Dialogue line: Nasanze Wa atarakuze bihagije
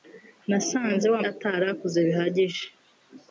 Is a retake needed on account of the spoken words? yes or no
no